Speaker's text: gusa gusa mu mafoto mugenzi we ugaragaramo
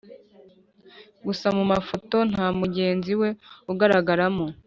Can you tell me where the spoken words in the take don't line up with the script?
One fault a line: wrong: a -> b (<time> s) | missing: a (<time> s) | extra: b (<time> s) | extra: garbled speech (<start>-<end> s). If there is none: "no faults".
missing: gusa (1.5 s)
extra: nta (2.3 s)